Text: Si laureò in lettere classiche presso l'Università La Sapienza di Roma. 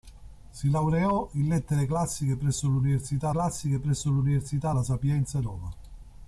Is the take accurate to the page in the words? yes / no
no